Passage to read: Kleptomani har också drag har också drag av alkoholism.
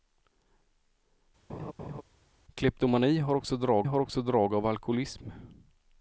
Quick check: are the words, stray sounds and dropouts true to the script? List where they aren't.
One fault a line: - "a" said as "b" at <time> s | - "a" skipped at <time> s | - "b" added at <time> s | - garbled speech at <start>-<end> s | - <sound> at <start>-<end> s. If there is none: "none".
- laugh at 1.5-2.0 s